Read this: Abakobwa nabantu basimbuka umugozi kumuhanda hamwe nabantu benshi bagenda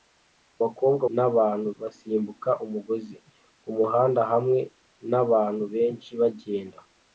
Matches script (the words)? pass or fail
pass